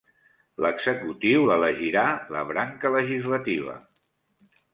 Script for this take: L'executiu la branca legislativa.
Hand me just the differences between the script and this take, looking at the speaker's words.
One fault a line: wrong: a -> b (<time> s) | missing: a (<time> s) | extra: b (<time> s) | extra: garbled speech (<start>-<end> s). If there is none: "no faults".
extra: l'elegirà (1.5 s)